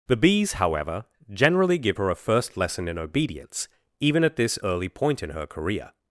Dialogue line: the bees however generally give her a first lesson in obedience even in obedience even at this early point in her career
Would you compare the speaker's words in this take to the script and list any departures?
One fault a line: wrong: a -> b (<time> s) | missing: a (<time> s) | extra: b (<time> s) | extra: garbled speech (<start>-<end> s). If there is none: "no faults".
missing: in obedience even (4.2 s)